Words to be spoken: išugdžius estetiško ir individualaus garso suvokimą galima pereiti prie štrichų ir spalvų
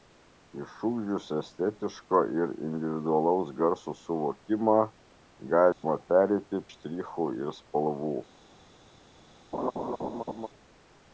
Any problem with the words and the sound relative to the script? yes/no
yes